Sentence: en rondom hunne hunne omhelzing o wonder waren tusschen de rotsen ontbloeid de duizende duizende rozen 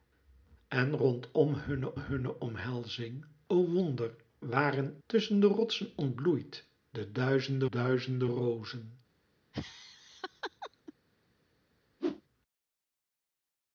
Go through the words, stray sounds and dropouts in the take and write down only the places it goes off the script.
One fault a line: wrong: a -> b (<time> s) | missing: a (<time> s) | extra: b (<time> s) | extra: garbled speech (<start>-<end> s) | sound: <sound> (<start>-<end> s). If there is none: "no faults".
sound: laugh (9.5-10.9 s)
sound: whoosh (12.0-12.2 s)